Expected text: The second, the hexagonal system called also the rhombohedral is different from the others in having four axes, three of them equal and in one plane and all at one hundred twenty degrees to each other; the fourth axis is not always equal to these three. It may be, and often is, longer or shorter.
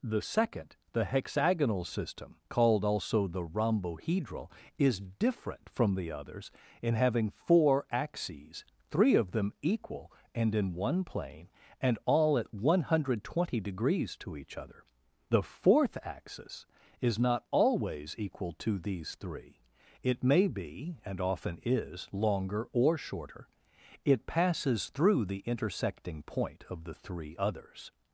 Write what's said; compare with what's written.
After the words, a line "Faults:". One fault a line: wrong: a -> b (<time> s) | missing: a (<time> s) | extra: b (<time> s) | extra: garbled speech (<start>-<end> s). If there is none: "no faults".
The second, the hexagonal system called also the rhombohedral is different from the others in having four axes, three of them equal and in one plane and all at one hundred twenty degrees to each other; the fourth axis is not always equal to these three. It may be, and often is, longer or shorter. It passes through the intersecting point of the three others
Faults:
extra: It passes through the intersecting point of the three others (24.0 s)